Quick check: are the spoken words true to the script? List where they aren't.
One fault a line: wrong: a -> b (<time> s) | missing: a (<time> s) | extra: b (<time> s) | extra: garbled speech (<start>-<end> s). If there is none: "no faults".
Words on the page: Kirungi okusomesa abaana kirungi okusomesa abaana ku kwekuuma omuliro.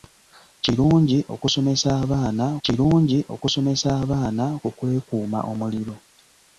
no faults